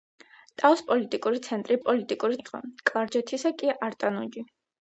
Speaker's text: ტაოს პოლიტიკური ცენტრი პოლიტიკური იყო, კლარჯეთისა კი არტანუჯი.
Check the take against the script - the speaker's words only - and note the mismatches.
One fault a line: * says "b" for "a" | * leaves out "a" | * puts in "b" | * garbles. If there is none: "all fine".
all fine